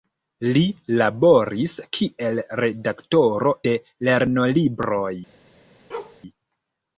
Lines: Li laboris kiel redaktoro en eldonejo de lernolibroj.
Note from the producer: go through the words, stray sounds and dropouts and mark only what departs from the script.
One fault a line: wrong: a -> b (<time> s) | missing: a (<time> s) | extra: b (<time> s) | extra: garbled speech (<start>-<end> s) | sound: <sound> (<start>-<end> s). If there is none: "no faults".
missing: en eldonejo (3.5 s)
sound: bark (5.9-6.2 s)